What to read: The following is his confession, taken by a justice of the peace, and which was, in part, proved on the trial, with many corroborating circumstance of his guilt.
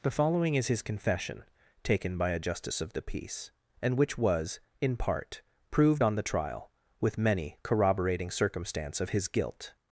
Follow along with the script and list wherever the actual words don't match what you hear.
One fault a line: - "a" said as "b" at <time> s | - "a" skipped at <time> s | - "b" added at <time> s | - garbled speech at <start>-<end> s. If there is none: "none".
none